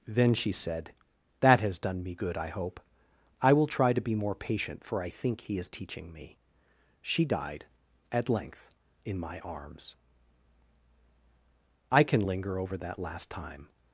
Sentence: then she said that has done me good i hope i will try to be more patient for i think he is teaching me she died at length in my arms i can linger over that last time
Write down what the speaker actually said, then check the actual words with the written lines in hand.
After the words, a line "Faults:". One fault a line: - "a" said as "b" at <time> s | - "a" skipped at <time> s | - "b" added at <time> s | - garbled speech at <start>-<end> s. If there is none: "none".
then she said that has done me good i hope i will try to be more patient for i think he is teaching me she died at length in my arms i can linger over that last time
Faults:
none